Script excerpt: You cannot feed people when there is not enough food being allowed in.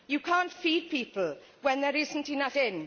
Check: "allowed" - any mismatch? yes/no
yes